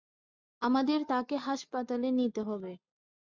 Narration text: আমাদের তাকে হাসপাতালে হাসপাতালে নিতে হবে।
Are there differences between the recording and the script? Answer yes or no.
yes